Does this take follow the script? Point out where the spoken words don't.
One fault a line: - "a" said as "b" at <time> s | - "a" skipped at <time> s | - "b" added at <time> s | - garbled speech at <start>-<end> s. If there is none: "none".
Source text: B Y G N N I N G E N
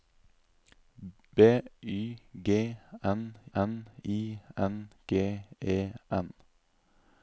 none